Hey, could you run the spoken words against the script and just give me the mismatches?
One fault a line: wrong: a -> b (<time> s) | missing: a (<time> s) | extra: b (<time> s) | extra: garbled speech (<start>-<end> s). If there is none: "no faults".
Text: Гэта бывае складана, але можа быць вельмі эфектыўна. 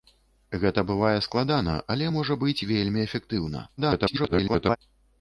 extra: garbled speech (3.8-4.8 s)